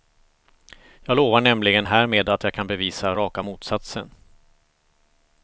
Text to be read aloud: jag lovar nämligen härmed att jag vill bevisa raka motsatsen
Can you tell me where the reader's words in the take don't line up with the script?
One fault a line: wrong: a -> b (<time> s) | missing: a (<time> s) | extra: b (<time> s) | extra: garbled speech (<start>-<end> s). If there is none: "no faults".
wrong: vill -> kan (2.5 s)